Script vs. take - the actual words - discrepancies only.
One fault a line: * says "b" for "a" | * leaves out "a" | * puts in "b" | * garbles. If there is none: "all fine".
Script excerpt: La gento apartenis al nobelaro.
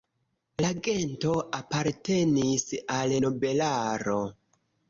all fine